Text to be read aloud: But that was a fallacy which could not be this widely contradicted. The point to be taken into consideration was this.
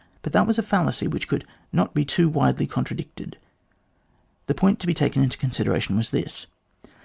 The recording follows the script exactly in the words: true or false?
false